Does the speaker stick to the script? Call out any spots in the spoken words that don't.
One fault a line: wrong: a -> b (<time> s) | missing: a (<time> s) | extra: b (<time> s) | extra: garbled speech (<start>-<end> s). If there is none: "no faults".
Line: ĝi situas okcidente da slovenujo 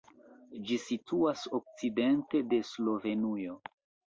wrong: da -> de (2.5 s)